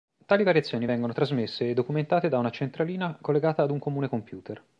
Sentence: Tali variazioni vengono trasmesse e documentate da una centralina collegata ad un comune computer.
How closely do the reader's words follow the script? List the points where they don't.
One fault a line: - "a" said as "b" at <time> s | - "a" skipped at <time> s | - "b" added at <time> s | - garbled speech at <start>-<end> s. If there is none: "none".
none